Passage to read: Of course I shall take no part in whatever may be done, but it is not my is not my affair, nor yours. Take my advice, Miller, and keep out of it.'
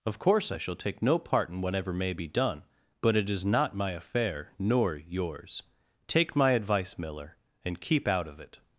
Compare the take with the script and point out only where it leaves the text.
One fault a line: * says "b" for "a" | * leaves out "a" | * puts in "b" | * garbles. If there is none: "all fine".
* leaves out "is not my"